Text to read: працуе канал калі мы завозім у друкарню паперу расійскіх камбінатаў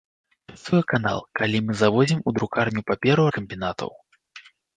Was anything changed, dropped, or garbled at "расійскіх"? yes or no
yes